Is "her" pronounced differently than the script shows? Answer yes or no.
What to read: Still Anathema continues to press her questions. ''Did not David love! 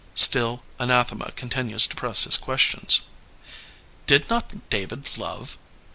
yes